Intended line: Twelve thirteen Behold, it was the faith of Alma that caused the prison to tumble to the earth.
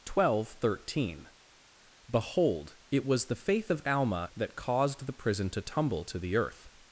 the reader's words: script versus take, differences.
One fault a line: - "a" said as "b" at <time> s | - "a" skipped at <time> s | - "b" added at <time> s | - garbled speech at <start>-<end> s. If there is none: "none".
none